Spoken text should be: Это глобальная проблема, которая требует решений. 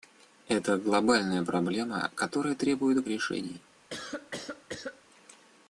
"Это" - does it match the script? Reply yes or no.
yes